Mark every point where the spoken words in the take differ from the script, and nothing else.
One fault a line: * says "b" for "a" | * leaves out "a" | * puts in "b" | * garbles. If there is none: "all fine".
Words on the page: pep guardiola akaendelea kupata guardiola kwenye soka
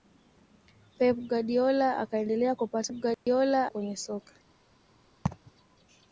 all fine